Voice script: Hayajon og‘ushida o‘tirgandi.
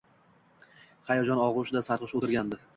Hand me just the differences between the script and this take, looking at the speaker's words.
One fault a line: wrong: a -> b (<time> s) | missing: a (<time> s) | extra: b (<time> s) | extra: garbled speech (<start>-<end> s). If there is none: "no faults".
extra: sarxush (1.9 s)